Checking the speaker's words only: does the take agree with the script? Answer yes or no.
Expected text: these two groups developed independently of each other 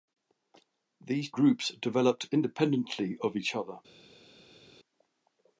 no